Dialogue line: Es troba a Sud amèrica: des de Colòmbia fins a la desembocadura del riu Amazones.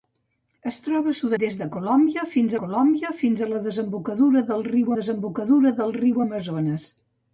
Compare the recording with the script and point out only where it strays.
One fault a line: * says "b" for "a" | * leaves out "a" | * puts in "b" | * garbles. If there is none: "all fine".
* leaves out "amèrica"
* puts in "Colòmbia fins"
* puts in "desembocadura del riu"